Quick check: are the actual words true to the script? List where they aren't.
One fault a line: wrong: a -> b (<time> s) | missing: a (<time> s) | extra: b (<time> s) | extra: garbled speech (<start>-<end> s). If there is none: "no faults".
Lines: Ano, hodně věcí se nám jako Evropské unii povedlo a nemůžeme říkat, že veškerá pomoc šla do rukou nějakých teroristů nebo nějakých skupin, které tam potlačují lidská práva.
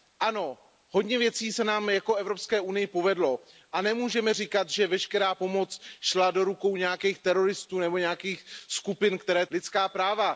missing: tam potlačují (9.5 s)